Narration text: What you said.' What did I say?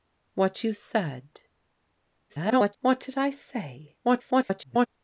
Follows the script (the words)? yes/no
no